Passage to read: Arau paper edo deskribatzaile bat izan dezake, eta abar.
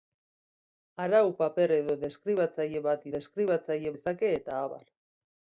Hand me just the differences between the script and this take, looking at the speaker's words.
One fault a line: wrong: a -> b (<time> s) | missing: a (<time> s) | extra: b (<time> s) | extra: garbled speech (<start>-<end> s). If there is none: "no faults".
wrong: izan -> deskribatzaile (3.2 s)